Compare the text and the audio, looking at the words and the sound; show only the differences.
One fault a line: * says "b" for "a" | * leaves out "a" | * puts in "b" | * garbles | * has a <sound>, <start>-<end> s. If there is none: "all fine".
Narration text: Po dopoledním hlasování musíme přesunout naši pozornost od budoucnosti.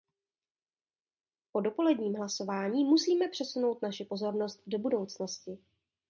* says "do" for "od"